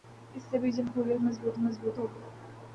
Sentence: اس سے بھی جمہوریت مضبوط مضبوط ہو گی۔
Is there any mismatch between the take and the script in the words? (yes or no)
no